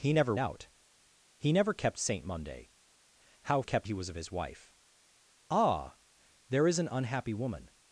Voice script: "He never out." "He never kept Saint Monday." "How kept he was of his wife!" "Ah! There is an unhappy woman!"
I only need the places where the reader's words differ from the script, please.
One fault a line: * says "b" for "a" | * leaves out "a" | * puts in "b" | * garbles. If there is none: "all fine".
all fine